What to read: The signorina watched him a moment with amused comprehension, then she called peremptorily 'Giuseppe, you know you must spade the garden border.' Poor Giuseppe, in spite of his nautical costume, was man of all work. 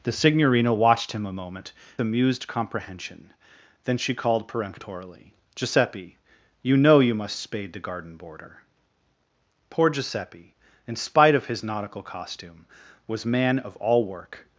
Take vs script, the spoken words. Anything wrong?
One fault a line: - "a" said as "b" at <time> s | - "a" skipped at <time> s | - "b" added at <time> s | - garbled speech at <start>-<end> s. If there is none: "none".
- "with" skipped at 1.7 s